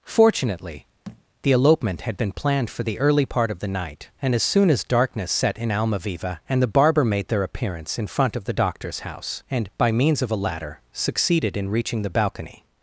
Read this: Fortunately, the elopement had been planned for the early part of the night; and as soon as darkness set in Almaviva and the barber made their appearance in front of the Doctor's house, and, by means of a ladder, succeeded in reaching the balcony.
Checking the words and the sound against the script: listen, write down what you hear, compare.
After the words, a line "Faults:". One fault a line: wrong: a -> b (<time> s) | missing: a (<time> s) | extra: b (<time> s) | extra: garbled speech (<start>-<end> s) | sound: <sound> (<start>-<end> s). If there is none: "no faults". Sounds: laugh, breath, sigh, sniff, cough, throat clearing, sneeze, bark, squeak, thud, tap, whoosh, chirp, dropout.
Fortunately, the elopement had been planned for the early part of the night; and as soon as darkness set in Almaviva and the barber made their appearance in front of the Doctor's house, and, by means of a ladder, succeeded in reaching the balcony.
Faults:
sound: thud (1.0-1.2 s)